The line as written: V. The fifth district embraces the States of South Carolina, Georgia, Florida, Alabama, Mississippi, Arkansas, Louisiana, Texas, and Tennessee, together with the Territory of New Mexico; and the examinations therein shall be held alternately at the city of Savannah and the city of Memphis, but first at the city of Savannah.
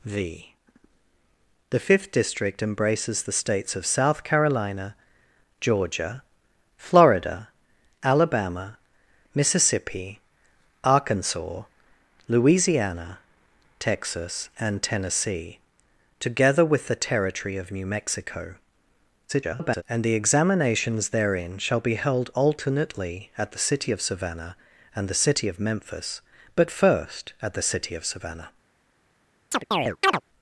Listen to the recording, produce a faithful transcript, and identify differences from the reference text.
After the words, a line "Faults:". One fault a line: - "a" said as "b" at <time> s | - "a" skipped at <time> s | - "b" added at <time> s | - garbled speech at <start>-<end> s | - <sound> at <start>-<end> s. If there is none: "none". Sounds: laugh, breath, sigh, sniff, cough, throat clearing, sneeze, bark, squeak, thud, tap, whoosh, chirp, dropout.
V. The fifth district embraces the States of South Carolina, Georgia, Florida, Alabama, Mississippi, Arkansas, Louisiana, Texas, and Tennessee, together with the Territory of New Mexico; [garbled] and the examinations therein shall be held alternately at the city of Savannah and the city of Memphis, but first at the city of Savannah.
Faults:
- garbled speech at 19.3-19.8 s
- chirp at 29.5-30.2 s